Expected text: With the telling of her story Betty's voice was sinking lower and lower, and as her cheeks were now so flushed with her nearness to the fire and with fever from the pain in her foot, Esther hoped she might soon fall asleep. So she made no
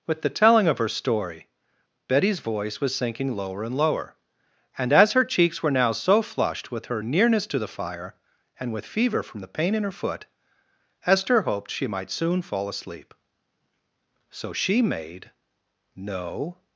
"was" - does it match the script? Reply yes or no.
yes